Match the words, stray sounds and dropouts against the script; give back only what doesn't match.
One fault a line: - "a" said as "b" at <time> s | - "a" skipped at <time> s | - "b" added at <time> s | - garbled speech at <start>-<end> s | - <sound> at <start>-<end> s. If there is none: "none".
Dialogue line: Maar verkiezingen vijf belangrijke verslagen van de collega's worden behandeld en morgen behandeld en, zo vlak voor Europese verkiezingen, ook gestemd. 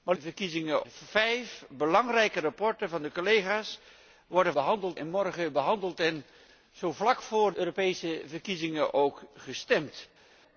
none